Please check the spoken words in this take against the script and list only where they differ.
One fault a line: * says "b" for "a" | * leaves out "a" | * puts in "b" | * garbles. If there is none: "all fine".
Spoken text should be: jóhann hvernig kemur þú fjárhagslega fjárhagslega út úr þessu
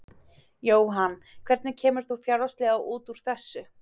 * leaves out "fjárhagslega"